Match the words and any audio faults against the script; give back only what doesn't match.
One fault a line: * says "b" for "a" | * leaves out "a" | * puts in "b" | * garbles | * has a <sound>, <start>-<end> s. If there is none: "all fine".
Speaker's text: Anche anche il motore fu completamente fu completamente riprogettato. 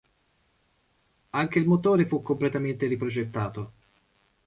* leaves out "anche"
* leaves out "fu completamente"